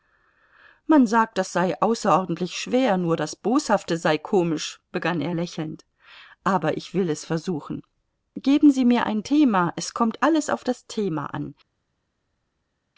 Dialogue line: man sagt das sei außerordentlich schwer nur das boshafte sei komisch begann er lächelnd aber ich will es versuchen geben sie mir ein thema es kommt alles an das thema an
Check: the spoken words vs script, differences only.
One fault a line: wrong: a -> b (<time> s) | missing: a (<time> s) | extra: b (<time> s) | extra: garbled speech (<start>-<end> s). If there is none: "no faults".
wrong: an -> auf (10.5 s)